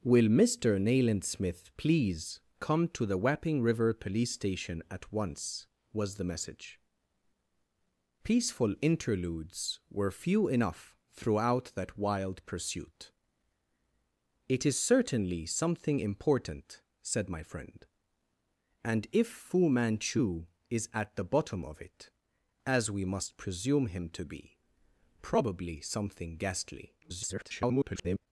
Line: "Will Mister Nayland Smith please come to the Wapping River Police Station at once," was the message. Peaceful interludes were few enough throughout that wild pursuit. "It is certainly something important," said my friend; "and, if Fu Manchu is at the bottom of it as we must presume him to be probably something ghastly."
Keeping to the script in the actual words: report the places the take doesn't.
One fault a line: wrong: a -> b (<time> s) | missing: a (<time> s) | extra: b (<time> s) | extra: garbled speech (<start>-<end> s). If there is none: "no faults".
extra: garbled speech (27.0-28.3 s)